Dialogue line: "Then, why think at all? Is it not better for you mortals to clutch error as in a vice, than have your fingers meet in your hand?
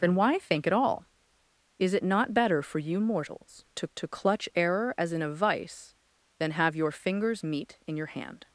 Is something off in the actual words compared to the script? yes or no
yes